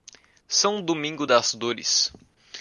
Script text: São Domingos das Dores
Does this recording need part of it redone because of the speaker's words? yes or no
no